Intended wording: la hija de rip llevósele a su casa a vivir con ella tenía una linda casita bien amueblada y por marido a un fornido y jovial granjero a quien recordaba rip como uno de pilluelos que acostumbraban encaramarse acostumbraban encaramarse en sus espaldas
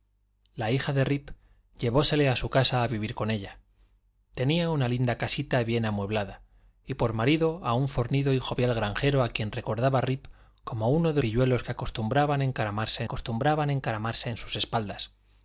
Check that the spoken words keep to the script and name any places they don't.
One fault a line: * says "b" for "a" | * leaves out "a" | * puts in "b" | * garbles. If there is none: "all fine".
all fine